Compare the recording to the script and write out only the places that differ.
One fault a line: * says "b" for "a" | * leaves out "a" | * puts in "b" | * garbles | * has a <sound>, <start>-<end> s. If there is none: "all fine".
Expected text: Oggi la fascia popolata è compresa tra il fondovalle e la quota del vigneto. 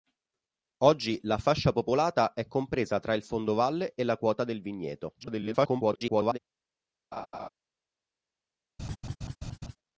* garbles
* has a laugh, 7.1-7.5 s
* has a laugh, 8.8-9.8 s